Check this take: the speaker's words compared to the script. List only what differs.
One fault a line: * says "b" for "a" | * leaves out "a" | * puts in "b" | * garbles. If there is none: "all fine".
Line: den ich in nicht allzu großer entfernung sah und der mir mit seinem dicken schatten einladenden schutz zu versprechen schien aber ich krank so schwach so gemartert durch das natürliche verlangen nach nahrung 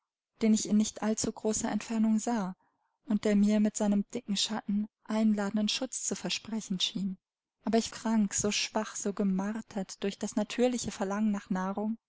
all fine